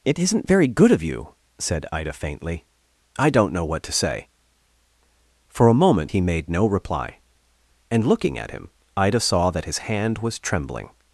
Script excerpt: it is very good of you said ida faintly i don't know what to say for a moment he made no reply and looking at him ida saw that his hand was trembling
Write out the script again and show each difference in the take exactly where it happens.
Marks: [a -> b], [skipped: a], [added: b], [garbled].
it [is -> isn't] very good of you said ida faintly i don't know what to say for a moment he made no reply and looking at him ida saw that his hand was trembling